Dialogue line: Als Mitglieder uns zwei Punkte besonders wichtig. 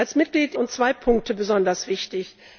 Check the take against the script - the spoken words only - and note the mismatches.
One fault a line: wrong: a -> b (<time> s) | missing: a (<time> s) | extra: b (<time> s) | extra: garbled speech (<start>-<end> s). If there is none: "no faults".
no faults